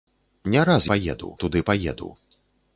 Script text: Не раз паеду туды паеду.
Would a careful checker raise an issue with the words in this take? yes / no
no